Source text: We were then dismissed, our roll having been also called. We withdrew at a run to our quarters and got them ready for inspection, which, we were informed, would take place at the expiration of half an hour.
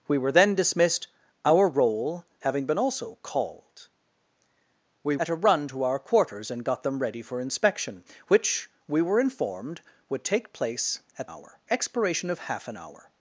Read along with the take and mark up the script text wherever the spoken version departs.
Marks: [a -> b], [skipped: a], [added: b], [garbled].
We were then dismissed, our roll having been also called. We [skipped: withdrew] at a run to our quarters and got them ready for inspection, which, we were informed, would take place at [the -> hour] expiration of half an hour.